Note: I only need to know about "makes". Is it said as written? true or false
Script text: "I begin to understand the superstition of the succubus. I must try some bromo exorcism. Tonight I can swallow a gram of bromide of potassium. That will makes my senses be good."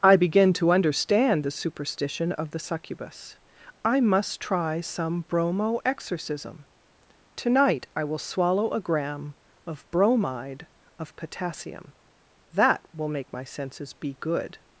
false